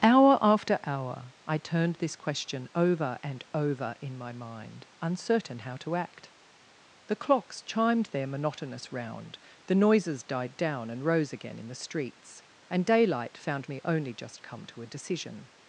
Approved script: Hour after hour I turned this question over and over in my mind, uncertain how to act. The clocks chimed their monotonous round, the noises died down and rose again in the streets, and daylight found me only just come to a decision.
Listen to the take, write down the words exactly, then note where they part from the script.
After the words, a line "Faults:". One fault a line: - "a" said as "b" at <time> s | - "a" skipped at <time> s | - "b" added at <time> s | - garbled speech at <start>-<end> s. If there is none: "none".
Hour after hour I turned this question over and over in my mind, uncertain how to act. The clocks chimed their monotonous round, the noises died down and rose again in the streets, and daylight found me only just come to a decision.
Faults:
none